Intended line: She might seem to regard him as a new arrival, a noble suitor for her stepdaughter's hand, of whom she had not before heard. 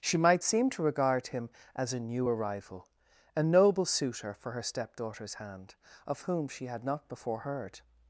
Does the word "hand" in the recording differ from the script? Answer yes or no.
no